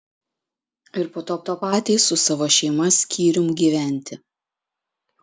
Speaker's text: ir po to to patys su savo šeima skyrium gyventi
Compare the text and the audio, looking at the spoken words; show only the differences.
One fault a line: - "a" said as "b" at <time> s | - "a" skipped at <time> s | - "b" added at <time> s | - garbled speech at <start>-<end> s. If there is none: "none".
none